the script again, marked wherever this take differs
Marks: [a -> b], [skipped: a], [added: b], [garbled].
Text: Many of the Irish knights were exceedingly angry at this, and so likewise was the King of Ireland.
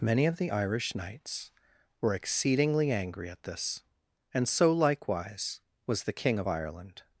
Many of the Irish knights were exceedingly angry at this, and so likewise was the King of Ireland.